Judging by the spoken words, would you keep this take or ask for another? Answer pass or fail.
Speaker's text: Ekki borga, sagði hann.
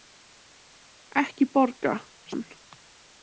fail